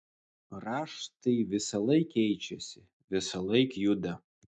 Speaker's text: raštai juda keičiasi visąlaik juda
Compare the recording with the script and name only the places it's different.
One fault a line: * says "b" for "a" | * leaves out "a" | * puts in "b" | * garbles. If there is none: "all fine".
* says "visąlaik" for "juda"